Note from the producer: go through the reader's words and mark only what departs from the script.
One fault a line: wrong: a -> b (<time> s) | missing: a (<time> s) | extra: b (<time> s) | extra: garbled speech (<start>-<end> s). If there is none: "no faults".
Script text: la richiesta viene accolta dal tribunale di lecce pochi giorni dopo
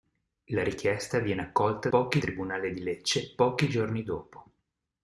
wrong: dal -> pochi (1.9 s)